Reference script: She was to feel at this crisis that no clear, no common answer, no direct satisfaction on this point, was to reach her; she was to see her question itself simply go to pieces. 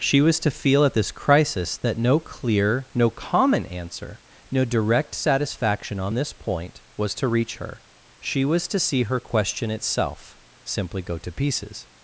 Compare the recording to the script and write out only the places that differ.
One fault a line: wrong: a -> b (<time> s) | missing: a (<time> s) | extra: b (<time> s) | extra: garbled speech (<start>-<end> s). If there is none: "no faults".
no faults